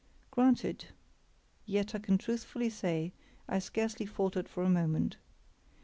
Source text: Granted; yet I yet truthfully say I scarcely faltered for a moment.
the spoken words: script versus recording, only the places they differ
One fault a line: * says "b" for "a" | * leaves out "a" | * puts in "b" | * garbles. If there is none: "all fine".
* says "can" for "yet"